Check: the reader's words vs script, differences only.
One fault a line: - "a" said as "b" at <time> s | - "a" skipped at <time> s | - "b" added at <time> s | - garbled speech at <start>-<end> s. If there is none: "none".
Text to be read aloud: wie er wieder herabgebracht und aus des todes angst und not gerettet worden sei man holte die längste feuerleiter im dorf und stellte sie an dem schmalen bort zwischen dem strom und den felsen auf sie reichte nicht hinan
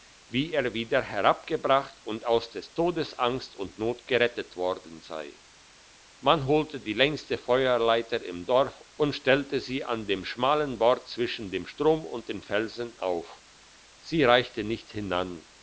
none